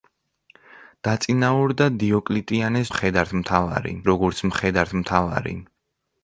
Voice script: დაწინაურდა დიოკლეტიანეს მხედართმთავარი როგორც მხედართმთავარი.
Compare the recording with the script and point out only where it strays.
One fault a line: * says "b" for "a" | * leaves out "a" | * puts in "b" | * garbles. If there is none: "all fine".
all fine